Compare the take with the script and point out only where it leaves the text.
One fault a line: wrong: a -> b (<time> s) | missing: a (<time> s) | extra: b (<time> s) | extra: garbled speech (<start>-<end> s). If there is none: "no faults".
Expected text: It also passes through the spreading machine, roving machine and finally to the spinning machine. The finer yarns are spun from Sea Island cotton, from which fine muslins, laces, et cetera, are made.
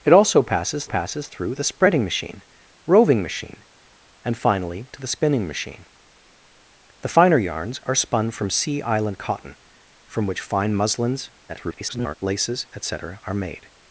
extra: passes (0.8 s)
extra: garbled speech (11.5-12.1 s)